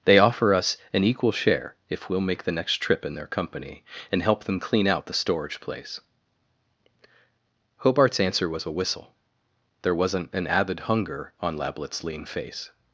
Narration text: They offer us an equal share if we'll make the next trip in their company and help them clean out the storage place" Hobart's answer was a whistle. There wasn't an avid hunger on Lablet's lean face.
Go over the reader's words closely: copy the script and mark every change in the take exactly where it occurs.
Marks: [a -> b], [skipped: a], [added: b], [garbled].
They offer us an equal share if we'll make the next trip in their company and help them clean out the storage place" Hobart's answer was a whistle. There wasn't an avid hunger on Lablet's lean face.